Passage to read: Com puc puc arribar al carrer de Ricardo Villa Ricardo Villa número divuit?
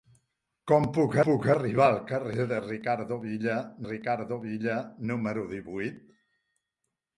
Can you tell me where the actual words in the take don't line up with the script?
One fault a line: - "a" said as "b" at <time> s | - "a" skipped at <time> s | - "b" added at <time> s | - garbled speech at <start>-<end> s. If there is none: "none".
none